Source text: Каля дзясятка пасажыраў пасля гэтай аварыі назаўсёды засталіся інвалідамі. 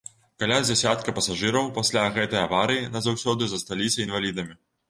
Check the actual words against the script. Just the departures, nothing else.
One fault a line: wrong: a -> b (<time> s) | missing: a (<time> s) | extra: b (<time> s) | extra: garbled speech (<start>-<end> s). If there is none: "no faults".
no faults